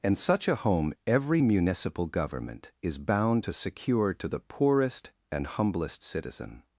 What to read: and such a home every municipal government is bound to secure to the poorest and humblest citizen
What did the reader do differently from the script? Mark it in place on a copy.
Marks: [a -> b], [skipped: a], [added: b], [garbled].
and such a home every municipal government is bound to secure to the poorest and humblest citizen